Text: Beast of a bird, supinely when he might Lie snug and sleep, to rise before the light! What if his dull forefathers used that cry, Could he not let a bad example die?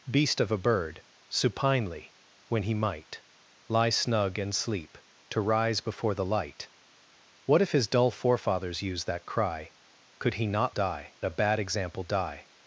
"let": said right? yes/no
no